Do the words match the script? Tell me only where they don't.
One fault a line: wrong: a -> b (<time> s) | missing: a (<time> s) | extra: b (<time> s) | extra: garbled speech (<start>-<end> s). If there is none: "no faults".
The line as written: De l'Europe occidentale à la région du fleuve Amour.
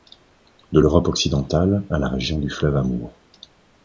no faults